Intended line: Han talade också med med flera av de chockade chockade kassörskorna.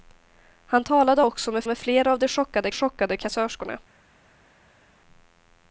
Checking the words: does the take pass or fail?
pass